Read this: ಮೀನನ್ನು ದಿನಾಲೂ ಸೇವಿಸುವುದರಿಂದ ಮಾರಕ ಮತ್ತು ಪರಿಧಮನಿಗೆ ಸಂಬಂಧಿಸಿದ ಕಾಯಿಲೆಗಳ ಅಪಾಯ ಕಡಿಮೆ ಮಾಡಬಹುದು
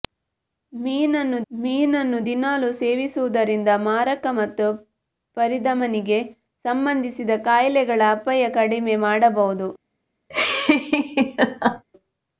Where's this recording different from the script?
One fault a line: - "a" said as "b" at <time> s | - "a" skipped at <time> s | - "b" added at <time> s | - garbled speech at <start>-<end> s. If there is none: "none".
- "ಮೀನನ್ನು" added at 1.5 s